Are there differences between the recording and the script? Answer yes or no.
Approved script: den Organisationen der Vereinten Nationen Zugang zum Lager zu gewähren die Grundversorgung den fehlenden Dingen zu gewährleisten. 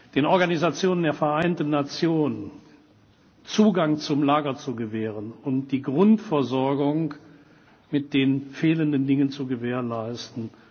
yes